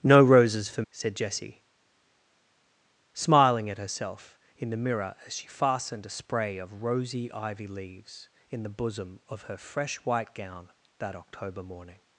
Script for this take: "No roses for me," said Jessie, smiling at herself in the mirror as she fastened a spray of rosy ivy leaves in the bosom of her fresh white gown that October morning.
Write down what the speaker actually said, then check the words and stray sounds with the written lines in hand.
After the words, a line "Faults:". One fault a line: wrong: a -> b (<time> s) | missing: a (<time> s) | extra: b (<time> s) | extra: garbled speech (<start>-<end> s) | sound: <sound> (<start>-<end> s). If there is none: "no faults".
"No roses for," said Jessie, smiling at herself in the mirror as she fastened a spray of rosy ivy leaves in the bosom of her fresh white gown that October morning.
Faults:
missing: me (0.8 s)